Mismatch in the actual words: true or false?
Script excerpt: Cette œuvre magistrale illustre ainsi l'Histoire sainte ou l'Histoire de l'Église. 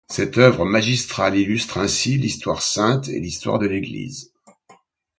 true